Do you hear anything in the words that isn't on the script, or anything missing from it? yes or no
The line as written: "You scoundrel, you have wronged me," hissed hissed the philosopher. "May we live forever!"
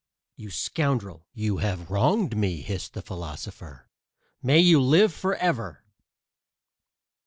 yes